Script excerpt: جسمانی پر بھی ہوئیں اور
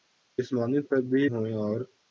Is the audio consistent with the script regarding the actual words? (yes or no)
yes